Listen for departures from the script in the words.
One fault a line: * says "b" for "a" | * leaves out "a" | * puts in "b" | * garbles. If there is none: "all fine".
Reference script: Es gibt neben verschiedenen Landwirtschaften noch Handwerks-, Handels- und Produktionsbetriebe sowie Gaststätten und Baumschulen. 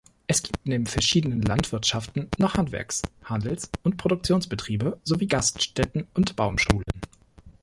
all fine